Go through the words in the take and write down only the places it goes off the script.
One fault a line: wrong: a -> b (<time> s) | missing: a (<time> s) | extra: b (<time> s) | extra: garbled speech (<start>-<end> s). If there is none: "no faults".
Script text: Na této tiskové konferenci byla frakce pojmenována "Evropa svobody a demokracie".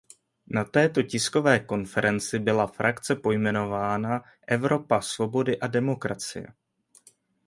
no faults